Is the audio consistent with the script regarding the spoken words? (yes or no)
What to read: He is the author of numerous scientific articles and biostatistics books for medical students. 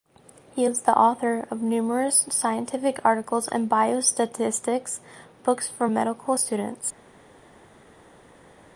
yes